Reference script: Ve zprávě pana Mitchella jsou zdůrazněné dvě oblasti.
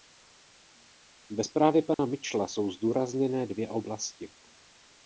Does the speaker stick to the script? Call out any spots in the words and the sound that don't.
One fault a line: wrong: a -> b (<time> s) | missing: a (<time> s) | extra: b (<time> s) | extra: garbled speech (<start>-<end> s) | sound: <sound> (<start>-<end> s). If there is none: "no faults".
sound: dropout (1.9-2.0 s)